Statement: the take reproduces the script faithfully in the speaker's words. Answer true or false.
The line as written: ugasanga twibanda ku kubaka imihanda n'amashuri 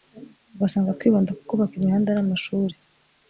true